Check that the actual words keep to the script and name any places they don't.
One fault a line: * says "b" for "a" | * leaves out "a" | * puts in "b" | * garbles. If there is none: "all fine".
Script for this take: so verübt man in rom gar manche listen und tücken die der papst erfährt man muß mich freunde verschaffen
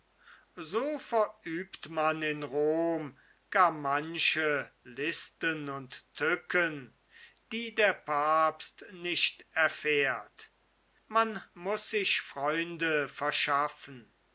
* puts in "nicht"
* says "sich" for "mich"